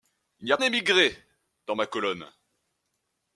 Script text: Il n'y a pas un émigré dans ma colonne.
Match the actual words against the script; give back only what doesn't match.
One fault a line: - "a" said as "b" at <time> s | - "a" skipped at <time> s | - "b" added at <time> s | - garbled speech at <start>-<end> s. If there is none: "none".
- "pas un" skipped at 0.6 s